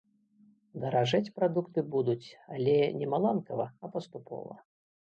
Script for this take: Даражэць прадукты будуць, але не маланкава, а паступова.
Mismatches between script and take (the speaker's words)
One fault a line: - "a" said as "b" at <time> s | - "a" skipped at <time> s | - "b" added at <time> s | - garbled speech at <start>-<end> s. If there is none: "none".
none